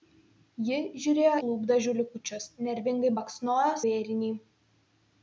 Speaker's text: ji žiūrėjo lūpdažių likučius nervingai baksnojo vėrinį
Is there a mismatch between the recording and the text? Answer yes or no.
no